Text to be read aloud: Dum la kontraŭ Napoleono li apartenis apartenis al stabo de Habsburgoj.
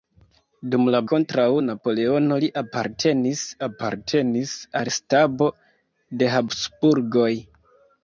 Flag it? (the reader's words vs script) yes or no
no